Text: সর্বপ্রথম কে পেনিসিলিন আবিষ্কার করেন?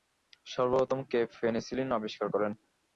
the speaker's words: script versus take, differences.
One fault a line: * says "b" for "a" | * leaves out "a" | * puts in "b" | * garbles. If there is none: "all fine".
all fine